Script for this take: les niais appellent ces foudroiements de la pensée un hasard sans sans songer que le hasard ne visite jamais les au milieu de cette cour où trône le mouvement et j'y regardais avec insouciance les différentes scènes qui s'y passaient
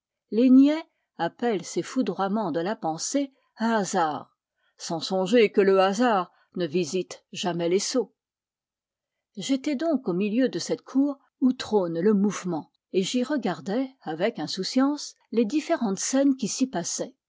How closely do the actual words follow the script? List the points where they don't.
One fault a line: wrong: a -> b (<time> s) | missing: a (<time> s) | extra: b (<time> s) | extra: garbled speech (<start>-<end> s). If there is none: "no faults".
missing: sans (5.0 s)
extra: sots j'étais donc (7.8 s)